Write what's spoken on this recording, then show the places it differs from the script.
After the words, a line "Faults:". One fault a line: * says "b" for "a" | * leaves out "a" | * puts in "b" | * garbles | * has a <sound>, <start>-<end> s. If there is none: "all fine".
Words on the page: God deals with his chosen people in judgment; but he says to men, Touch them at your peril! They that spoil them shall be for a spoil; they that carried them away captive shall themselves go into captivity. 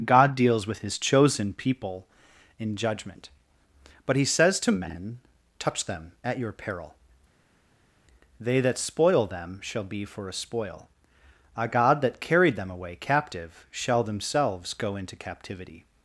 God deals with his chosen people in judgment; but he says to men, Touch them at your peril! They that spoil them shall be for a spoil; a god that carried them away captive shall themselves go into captivity.
Faults:
* says "a god" for "they"